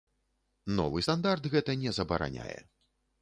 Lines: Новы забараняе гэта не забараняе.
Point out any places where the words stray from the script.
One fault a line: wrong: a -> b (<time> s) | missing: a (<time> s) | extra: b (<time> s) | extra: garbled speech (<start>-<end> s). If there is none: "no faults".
wrong: забараняе -> стандарт (1.0 s)